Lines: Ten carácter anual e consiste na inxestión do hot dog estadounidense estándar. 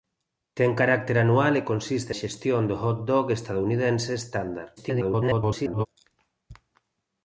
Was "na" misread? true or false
true